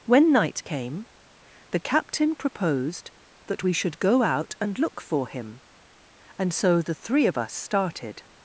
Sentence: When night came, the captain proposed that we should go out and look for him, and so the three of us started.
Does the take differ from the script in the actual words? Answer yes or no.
no